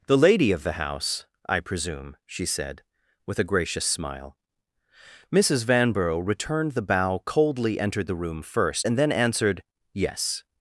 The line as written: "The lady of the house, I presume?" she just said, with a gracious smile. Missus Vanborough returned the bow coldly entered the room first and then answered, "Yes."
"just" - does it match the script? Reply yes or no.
no